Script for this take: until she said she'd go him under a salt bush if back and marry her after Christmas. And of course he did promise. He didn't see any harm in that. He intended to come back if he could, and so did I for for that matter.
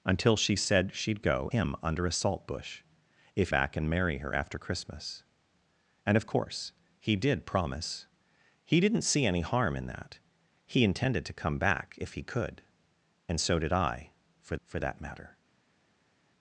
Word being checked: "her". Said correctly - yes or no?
yes